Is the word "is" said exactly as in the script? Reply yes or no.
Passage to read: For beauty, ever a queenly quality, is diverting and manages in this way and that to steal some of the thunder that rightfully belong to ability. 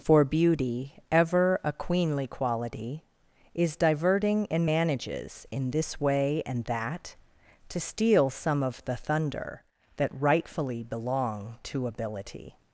yes